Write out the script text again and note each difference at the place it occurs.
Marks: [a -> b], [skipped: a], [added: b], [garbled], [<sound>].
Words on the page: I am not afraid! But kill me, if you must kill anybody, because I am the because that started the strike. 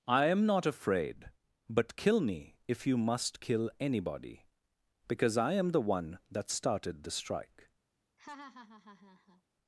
I am not afraid! But kill me, if you must kill anybody, because I am the [because -> one] that started the strike. [laugh]